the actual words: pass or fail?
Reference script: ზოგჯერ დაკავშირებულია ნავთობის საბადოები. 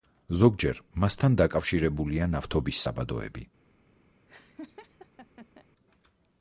fail